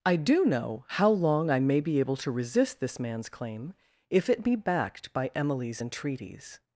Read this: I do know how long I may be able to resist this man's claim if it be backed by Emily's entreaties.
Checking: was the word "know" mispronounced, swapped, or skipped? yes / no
no